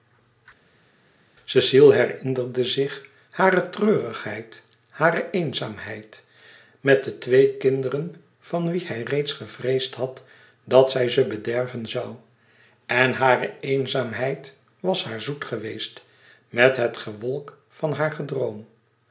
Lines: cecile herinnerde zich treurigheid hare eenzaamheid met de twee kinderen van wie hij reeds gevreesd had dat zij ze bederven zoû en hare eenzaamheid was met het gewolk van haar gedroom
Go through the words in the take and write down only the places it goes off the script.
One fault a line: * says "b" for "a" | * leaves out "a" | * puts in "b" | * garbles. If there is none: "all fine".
* puts in "hare"
* puts in "haar zoet geweest"